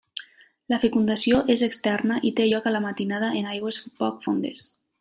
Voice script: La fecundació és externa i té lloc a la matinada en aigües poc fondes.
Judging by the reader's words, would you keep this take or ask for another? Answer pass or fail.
pass